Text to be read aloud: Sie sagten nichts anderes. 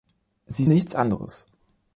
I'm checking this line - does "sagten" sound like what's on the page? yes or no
no